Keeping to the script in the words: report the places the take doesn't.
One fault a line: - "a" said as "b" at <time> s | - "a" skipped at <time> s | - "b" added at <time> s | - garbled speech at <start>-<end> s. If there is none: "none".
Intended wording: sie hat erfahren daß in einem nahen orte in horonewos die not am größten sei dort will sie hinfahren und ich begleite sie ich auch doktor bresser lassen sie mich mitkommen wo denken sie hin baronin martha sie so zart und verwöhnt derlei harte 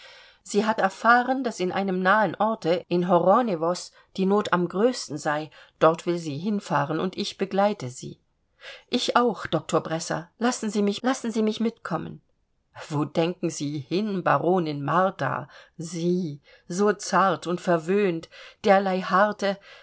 - "lassen sie mich" added at 11.0 s